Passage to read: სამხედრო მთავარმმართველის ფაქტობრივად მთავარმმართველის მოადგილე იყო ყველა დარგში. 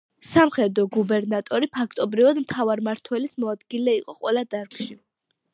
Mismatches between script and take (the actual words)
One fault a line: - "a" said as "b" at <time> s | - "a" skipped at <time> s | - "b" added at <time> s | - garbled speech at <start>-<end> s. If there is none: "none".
- "მთავარმმართველის" said as "გუბერნატორი" at 0.9 s